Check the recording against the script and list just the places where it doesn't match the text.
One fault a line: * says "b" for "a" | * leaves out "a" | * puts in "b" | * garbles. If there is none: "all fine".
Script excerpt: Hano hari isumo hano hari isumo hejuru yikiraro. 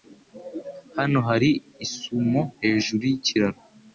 * leaves out "hano hari isumo"